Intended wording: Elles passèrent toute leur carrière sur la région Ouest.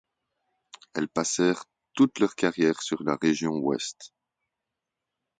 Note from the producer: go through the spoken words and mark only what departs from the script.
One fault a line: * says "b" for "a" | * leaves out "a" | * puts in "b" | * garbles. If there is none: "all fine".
all fine